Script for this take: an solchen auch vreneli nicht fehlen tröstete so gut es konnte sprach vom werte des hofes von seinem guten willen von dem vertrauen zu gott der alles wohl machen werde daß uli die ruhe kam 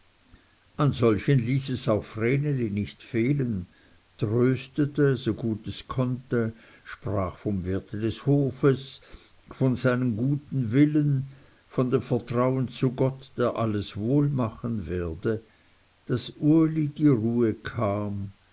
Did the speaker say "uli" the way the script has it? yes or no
yes